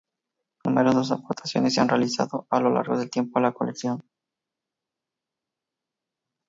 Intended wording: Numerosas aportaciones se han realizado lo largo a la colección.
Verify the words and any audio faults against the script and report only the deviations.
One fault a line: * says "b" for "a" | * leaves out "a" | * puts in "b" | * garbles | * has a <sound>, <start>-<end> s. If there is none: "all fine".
* puts in "a"
* puts in "del tiempo"